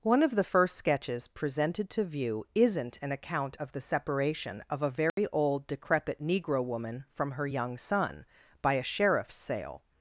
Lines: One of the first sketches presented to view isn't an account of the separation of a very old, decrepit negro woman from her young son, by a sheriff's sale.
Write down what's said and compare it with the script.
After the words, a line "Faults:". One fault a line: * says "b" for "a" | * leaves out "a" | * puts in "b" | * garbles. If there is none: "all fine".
One of the first sketches presented to view isn't an account of the separation of a very old, decrepit negro woman from her young son, by a sheriff's sale.
Faults:
all fine